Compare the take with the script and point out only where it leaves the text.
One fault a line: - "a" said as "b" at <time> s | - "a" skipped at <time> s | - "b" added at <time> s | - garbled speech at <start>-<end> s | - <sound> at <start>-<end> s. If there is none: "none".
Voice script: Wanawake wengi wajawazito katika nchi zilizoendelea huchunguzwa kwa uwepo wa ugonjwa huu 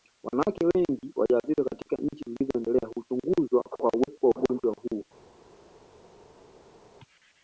none